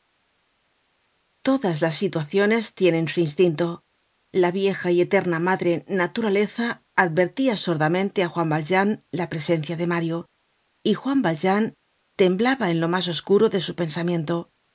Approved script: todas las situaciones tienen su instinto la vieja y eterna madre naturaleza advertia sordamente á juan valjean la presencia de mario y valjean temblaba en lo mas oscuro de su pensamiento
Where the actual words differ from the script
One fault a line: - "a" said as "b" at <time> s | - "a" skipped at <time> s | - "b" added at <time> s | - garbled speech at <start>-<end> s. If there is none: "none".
- "juan" added at 11.0 s